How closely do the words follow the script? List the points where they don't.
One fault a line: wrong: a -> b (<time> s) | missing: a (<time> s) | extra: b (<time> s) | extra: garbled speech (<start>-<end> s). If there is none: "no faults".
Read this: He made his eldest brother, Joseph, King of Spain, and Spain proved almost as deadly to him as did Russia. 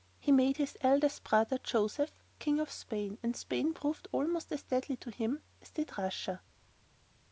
no faults